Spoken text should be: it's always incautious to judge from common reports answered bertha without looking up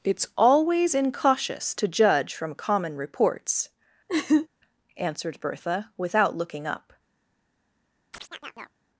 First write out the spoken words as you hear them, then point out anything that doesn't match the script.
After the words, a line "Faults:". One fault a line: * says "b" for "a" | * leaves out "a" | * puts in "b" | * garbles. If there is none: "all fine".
it's always incautious to judge from common reports answered bertha without looking up
Faults:
all fine